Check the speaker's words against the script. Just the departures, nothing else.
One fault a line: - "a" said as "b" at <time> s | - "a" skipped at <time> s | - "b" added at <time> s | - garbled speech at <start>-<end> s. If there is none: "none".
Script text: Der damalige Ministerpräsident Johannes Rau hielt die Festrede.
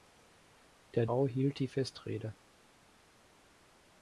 - "damalige Ministerpräsident Johannes" skipped at 1.1 s